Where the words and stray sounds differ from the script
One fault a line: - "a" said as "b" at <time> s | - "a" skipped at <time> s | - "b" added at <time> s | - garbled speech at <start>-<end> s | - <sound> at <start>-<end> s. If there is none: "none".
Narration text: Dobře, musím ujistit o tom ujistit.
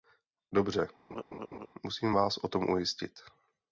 - laugh at 1.1-1.7 s
- "ujistit" said as "vás" at 2.1 s